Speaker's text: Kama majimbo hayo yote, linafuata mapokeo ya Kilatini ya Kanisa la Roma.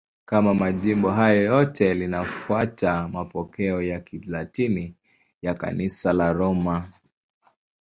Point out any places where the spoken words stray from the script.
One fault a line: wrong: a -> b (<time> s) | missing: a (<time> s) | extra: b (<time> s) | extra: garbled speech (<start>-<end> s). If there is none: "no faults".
no faults